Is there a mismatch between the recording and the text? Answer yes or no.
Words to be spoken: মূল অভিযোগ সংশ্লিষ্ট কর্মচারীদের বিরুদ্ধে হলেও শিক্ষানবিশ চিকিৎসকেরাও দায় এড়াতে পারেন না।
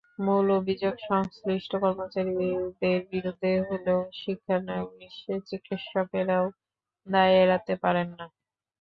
no